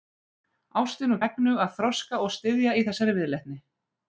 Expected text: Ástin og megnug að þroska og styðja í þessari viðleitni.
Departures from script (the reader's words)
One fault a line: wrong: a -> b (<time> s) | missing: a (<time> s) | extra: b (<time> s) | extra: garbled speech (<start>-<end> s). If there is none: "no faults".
no faults